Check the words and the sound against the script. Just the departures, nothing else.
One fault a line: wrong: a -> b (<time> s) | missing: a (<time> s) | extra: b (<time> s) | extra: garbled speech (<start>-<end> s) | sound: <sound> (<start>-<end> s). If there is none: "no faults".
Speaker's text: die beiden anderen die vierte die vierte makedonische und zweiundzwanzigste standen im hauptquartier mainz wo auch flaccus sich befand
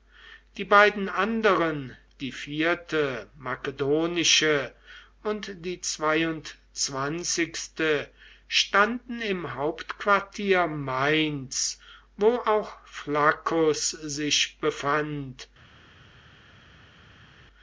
missing: die vierte (3.3 s)
extra: die (5.6 s)